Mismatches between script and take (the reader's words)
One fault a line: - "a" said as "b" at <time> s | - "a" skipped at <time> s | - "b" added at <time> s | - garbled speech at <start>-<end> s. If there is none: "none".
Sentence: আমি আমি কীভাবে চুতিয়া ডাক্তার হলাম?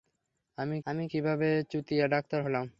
none